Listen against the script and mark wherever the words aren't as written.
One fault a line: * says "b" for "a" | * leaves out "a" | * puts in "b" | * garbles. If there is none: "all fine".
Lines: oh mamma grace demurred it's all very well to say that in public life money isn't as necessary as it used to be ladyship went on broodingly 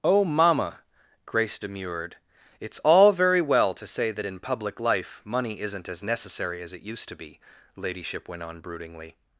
all fine